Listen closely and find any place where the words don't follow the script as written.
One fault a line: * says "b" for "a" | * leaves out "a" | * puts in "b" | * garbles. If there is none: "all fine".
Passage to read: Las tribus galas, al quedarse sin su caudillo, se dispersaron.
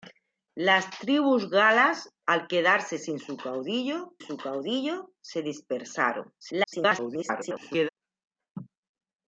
* puts in "su caudillo"
* garbles